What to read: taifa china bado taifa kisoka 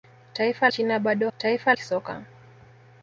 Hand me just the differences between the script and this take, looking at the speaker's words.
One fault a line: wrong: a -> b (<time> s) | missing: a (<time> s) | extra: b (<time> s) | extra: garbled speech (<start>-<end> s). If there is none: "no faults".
no faults